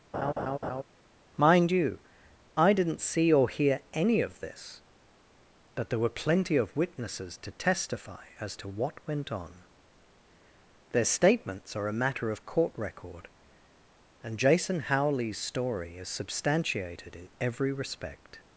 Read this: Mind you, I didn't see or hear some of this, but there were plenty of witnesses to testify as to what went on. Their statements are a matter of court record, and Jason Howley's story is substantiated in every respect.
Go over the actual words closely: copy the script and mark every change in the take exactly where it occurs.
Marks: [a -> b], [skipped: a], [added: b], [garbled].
Mind you, I didn't see or hear [some -> any] of this, but there were plenty of witnesses to testify as to what went on. Their statements are a matter of court record, and Jason Howley's story is substantiated in every respect.